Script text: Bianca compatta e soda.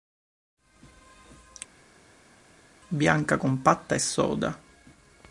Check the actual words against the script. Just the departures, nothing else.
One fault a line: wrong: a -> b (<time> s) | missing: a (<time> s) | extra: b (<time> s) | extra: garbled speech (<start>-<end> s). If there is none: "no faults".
no faults